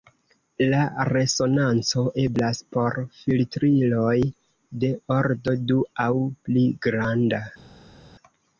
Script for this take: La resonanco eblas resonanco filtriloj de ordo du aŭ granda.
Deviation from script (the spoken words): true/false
true